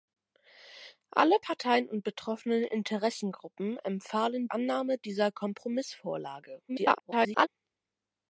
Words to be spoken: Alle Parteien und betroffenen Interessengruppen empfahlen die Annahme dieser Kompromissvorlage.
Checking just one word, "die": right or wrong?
wrong